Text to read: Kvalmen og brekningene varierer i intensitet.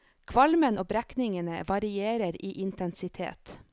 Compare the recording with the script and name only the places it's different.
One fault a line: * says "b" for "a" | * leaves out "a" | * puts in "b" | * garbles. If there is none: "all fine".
all fine